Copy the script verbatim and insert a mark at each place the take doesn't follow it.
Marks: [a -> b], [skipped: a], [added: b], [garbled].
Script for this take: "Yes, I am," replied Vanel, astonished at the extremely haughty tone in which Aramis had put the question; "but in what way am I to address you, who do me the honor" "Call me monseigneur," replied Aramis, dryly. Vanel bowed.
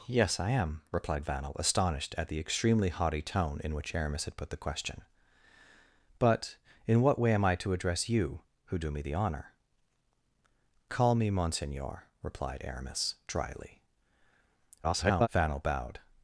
"Yes, I am," replied Vanel, astonished at the extremely haughty tone in which Aramis had put the question; "but in what way am I to address you, who do me the honor" "Call me monseigneur," replied Aramis, dryly. [garbled] Vanel bowed.